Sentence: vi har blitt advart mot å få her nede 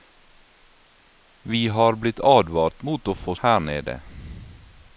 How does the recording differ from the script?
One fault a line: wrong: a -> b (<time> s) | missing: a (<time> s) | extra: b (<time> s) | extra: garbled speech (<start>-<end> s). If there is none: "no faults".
no faults